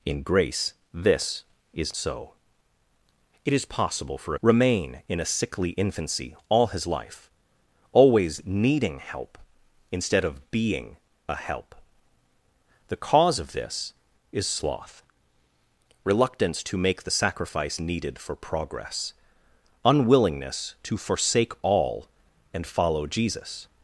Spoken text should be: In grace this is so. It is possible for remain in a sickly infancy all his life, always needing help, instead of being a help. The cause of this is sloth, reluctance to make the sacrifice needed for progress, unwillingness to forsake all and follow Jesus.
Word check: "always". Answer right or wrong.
right